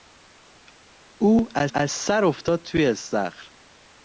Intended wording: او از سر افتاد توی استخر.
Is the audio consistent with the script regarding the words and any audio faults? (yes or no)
no